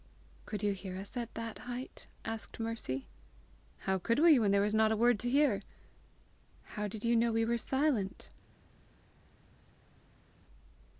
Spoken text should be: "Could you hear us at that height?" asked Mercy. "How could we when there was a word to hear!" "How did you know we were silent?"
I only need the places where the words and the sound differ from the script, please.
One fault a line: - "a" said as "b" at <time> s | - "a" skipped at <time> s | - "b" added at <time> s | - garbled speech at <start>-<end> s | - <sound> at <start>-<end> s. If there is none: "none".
- "not" added at 4.7 s